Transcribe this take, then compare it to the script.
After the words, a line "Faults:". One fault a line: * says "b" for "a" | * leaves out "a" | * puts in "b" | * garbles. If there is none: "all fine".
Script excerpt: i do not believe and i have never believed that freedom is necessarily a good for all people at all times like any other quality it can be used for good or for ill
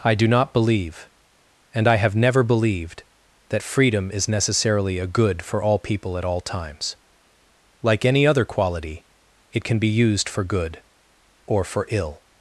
i do not believe and i have never believed that freedom is necessarily a good for all people at all times like any other quality it can be used for good or for ill
Faults:
all fine